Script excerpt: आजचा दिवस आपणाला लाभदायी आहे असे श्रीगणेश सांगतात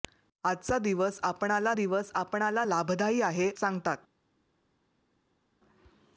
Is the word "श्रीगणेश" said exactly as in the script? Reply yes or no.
no